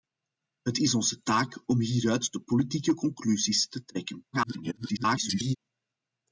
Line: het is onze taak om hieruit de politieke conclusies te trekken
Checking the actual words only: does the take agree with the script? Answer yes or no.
no